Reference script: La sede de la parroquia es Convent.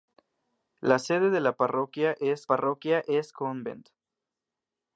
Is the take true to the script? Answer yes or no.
no